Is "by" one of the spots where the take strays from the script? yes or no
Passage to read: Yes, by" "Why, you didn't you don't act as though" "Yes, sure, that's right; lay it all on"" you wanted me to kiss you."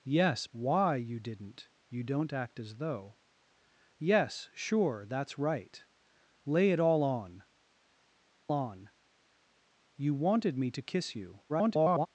yes